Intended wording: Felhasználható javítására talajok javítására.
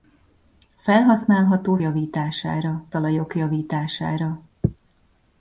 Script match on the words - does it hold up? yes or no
yes